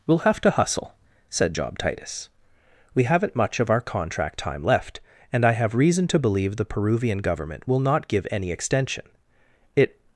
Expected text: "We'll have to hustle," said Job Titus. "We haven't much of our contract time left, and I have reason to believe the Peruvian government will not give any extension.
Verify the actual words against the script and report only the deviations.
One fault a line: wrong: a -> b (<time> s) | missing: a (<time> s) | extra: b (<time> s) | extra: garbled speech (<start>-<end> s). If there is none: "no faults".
extra: It (9.7 s)